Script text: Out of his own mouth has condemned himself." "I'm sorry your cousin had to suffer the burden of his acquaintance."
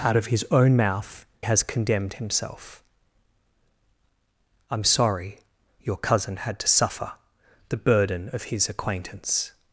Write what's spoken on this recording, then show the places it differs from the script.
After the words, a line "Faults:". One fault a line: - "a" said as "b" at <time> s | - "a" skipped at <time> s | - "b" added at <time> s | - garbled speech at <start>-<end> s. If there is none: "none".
Out of his own mouth has condemned himself." "I'm sorry your cousin had to suffer the burden of his acquaintance."
Faults:
none